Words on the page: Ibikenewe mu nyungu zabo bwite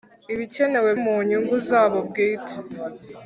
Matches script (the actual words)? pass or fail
pass